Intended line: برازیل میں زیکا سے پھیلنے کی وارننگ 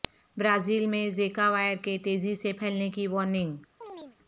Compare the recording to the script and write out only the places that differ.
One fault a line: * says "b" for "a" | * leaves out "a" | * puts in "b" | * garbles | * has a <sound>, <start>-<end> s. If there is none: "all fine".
* puts in "وائر کے تیزی"
* has a chirp, 3.8-4.2 s